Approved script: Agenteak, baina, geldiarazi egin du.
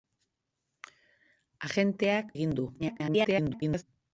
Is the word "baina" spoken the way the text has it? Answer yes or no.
no